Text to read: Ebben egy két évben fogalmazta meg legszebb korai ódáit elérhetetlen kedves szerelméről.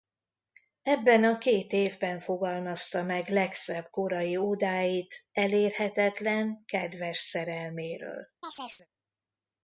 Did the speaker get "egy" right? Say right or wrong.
wrong